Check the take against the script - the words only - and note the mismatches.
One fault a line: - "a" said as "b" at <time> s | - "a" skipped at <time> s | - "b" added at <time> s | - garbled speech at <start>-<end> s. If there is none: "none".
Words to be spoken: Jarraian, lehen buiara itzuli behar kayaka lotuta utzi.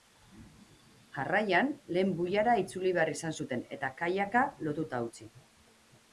- "izan zuten eta" added at 3.1 s